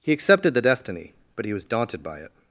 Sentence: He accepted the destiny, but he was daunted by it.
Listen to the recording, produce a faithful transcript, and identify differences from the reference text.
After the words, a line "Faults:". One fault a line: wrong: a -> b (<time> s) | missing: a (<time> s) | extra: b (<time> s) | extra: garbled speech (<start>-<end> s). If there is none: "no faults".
He accepted the destiny, but he was daunted by it.
Faults:
no faults